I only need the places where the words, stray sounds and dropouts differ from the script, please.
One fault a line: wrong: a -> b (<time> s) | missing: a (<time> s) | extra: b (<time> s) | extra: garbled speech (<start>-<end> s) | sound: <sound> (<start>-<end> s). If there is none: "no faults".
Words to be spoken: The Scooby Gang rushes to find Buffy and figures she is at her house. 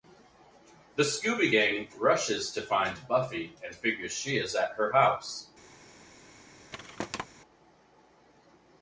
sound: thud (6.7-7.3 s)